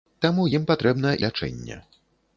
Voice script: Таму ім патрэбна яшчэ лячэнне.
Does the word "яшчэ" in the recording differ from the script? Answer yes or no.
yes